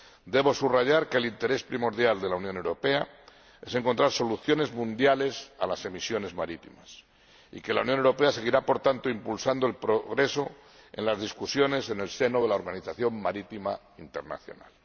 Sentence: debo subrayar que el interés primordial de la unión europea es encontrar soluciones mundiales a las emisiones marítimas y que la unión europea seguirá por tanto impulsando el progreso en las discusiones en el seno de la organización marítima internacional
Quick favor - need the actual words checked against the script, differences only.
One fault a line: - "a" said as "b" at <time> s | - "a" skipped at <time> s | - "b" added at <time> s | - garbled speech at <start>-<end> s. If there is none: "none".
none